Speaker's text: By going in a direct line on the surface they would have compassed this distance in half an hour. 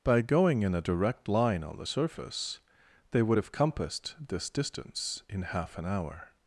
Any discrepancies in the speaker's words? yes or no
no